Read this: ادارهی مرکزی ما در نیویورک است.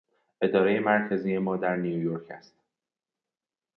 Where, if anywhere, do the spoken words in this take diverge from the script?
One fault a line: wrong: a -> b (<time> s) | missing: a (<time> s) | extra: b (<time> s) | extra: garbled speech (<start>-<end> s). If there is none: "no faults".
no faults